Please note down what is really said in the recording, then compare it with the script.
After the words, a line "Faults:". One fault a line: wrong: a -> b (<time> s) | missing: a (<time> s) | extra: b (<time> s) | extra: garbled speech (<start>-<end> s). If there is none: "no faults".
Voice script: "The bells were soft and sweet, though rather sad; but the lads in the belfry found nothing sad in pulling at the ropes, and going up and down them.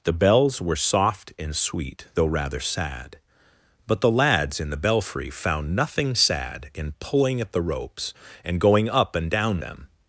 "The bells were soft and sweet, though rather sad; but the lads in the belfry found nothing sad in pulling at the ropes, and going up and down them.
Faults:
no faults